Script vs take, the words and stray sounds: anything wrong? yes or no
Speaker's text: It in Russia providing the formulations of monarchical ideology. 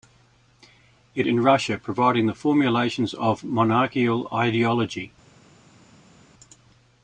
no